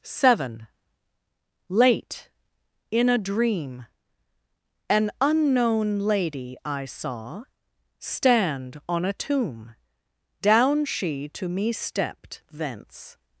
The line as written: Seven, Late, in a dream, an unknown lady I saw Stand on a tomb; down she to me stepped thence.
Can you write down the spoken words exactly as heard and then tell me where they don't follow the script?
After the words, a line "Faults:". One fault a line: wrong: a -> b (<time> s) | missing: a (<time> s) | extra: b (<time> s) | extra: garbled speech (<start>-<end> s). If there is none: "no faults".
Seven, Late, in a dream, an unknown lady I saw Stand on a tomb; down she to me stepped thence.
Faults:
no faults